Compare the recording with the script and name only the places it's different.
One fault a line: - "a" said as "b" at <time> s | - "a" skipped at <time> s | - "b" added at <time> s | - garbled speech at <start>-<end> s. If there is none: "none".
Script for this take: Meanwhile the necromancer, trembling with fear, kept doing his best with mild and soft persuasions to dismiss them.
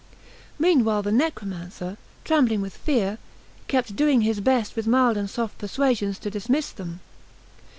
none